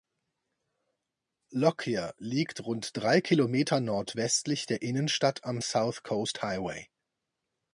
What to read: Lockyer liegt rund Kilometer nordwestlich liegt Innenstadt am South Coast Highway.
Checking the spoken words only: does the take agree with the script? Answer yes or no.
no